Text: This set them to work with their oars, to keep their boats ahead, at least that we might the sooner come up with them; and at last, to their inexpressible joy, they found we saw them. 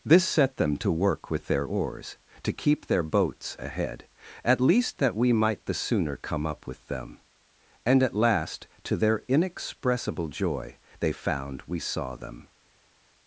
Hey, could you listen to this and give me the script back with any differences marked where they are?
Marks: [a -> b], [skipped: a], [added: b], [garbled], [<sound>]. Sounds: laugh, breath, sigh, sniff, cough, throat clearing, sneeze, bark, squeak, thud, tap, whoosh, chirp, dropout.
This set them to work with their oars, to keep their boats ahead, at least that we might the sooner come up with them; and at last, to their inexpressible joy, they found we saw them.